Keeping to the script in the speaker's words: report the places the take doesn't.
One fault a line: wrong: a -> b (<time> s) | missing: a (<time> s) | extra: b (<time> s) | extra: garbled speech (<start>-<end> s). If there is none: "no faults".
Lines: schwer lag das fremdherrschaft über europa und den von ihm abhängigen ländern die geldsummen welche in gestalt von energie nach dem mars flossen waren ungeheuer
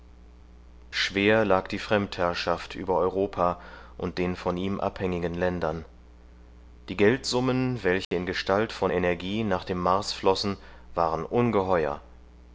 wrong: das -> die (1.7 s)